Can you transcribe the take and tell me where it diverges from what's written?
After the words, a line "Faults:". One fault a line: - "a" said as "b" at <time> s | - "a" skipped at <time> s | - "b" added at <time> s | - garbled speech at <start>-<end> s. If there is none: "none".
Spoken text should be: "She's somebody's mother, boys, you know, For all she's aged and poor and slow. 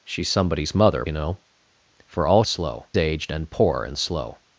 "She's somebody's mother, you know, For all slow aged and poor and slow.
Faults:
- "boys" skipped at 1.1 s
- "she's" said as "slow" at 2.4 s